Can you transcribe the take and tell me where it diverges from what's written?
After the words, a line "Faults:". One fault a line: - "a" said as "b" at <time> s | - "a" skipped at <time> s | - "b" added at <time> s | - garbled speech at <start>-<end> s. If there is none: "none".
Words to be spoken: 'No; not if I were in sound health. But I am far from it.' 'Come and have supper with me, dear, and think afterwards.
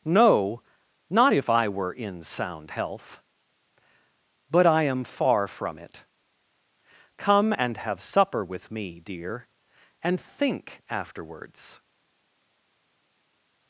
'No; not if I were in sound health. But I am far from it.' 'Come and have supper with me, dear, and think afterwards.
Faults:
none